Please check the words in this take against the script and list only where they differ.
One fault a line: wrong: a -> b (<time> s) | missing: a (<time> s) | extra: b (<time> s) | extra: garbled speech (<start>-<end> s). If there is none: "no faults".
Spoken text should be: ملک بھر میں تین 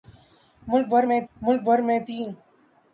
extra: ملک بھر میں (1.4 s)